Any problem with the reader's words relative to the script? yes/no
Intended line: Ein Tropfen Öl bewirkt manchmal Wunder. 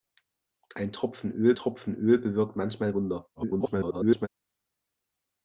yes